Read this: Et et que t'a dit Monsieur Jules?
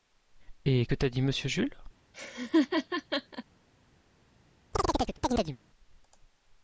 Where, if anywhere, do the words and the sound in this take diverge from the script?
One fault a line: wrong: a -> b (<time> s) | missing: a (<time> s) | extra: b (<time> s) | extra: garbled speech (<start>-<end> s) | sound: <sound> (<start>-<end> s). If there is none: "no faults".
missing: et (0.9 s)
sound: laugh (2.1-3.4 s)
sound: chirp (4.7-5.6 s)